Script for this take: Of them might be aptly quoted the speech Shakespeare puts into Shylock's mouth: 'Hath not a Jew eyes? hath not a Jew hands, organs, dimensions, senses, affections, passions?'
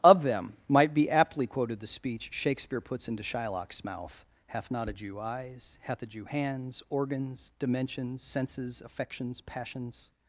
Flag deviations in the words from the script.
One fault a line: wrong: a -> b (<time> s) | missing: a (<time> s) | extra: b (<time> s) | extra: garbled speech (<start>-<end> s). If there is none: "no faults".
missing: not (6.0 s)